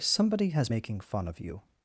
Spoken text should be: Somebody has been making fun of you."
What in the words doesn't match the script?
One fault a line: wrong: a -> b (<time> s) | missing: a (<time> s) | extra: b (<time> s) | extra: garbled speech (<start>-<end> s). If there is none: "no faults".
missing: been (0.7 s)